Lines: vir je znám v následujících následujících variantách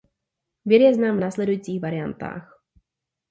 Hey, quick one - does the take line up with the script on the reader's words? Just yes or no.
no